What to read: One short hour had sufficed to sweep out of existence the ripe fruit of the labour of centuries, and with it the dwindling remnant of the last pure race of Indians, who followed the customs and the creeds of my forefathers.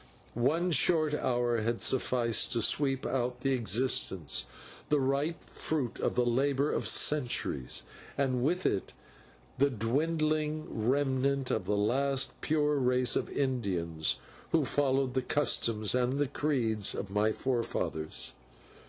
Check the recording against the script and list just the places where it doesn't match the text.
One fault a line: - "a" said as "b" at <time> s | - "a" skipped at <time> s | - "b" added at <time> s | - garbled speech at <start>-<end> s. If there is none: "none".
none